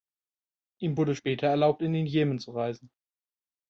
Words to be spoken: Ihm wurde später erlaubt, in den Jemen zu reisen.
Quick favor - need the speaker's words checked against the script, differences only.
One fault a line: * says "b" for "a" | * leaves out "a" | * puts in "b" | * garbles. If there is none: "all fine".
all fine